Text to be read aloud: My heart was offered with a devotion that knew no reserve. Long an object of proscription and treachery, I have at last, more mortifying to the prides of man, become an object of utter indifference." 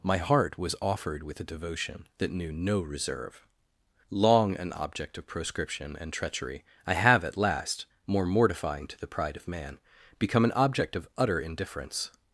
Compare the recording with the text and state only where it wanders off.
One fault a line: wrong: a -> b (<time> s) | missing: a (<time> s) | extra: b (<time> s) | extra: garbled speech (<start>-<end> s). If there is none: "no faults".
wrong: prides -> pride (9.1 s)